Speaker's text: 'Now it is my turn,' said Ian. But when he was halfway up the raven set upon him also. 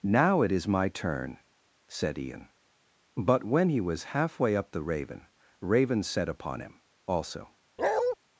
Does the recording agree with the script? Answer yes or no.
no